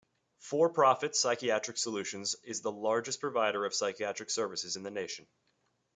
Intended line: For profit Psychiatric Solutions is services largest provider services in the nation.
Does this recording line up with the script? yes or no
no